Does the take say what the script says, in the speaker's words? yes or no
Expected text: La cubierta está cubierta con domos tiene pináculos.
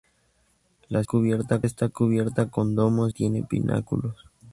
yes